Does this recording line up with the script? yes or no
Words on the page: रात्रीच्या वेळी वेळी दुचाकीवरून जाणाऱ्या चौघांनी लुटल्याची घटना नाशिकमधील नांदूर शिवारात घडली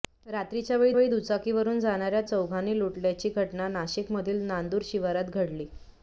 yes